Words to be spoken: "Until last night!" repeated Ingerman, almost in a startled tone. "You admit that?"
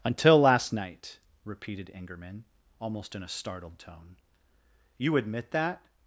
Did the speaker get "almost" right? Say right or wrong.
right